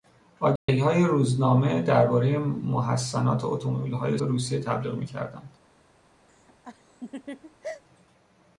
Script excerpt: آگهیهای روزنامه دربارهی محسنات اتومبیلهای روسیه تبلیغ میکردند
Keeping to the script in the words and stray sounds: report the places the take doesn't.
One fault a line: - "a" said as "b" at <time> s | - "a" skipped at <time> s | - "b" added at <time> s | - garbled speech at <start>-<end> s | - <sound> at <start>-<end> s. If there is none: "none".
- dropout at 0.6-0.7 s
- laugh at 6.3-7.8 s